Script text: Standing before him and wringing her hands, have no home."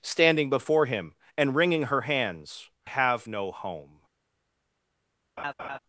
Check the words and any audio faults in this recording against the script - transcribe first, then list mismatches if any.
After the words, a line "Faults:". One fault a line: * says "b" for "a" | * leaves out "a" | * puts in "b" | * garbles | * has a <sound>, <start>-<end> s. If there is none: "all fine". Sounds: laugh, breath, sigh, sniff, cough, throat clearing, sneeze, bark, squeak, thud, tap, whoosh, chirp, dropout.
Standing before him and wringing her hands, have no home."
Faults:
* has a laugh, 5.4-5.8 s